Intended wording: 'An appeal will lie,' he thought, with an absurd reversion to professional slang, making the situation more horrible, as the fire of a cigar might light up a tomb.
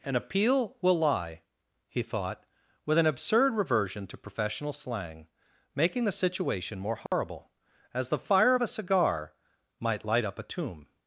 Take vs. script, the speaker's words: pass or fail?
pass